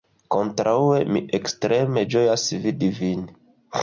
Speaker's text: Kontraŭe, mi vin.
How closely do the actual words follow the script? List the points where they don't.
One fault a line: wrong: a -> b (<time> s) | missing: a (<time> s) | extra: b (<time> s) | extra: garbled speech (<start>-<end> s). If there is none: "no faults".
extra: ekstreme ĝojas vidi (1.4 s)